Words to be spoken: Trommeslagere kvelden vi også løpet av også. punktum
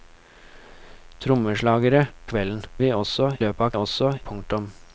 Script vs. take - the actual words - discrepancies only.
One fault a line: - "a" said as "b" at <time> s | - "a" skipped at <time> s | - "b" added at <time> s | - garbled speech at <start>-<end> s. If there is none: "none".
none